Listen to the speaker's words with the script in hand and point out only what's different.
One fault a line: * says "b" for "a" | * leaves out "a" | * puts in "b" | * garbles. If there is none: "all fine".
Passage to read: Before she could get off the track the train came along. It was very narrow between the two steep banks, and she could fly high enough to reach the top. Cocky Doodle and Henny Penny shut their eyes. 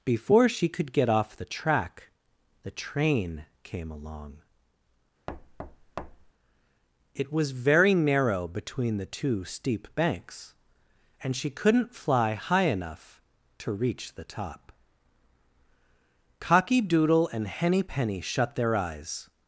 * says "couldn't" for "could"